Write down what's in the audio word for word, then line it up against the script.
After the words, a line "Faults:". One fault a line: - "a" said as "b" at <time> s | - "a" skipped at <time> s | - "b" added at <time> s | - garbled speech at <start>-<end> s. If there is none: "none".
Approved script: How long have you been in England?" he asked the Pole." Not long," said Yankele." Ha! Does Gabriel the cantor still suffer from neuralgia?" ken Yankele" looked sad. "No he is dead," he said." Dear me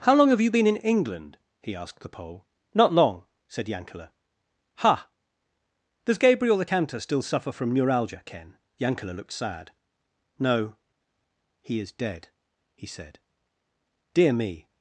How long have you been in England?" he asked the Pole." Not long," said Yankele." Ha! Does Gabriel the cantor still suffer from neuralgia?" ken Yankele" looked sad. "No he is dead," he said." Dear me
Faults:
none